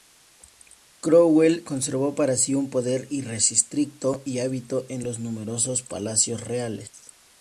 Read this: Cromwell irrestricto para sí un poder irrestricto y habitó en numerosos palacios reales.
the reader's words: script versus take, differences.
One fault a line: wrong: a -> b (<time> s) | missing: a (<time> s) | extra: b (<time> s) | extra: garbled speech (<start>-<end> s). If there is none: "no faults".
wrong: irrestricto -> conservó (1.6 s)
extra: los (5.0 s)